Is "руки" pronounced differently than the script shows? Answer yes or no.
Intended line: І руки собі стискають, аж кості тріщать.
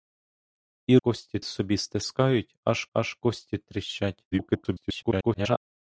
yes